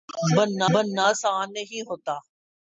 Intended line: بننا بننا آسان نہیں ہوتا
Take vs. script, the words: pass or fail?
pass